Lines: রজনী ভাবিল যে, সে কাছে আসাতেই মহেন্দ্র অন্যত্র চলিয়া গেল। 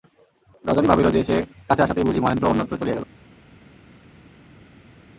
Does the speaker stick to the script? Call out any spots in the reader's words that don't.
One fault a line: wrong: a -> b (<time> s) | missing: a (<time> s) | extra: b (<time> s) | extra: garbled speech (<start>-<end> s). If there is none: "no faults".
extra: বুঝি (2.0 s)